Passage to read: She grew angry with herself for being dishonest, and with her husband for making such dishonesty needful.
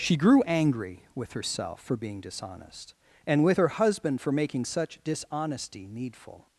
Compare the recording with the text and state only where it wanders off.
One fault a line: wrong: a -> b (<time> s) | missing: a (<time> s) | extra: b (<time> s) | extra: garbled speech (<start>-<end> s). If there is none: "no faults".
no faults